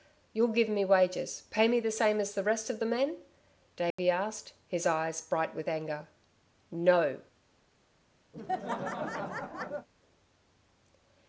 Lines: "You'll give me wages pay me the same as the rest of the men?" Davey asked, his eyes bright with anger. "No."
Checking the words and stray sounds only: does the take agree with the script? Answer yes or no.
no